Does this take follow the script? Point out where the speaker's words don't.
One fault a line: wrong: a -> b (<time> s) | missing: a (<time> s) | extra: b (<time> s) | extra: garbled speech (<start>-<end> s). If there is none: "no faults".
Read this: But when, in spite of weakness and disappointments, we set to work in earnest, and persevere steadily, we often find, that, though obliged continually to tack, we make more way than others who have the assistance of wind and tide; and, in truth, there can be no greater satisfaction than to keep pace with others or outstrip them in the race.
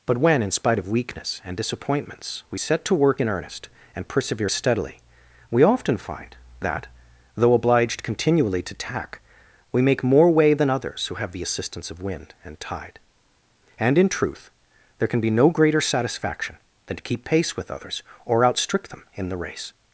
no faults